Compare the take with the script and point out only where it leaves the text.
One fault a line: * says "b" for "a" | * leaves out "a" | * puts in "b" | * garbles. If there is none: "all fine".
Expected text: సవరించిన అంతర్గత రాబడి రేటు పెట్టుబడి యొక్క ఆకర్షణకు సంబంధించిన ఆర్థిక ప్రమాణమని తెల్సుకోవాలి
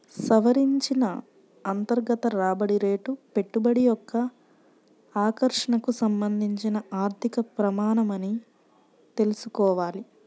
all fine